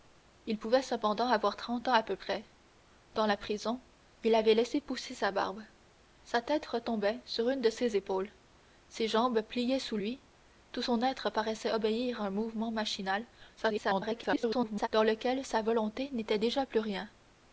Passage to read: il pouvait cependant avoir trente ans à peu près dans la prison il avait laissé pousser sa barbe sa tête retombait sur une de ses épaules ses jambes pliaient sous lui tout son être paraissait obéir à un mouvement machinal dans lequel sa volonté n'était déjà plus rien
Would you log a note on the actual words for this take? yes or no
yes